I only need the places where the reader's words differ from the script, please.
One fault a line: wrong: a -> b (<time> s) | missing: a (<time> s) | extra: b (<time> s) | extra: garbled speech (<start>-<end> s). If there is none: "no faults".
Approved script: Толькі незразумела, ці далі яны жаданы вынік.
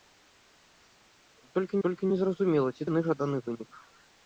extra: толькі (1.9 s)
missing: далі (2.8 s)